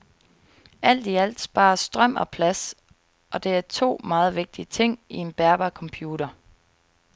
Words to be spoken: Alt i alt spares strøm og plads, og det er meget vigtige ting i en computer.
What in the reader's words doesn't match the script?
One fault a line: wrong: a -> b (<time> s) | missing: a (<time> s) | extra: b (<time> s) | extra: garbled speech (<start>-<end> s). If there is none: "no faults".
extra: to (3.6 s)
extra: bærbar (5.3 s)